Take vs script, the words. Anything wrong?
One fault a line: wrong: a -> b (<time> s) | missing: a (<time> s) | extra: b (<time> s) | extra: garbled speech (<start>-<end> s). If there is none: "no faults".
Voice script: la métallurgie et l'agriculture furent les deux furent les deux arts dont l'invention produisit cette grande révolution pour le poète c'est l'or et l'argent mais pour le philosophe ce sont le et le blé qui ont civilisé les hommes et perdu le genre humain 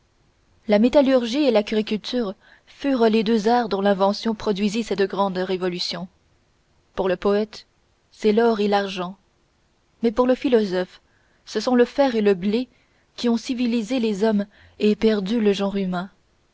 missing: furent les deux (3.5 s)
extra: fer (11.8 s)